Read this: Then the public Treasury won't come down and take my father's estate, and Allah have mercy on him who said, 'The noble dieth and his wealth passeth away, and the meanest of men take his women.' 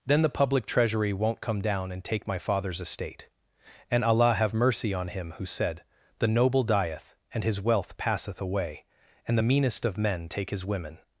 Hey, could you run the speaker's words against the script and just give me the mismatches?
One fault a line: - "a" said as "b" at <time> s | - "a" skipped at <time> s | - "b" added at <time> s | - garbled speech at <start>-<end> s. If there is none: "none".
none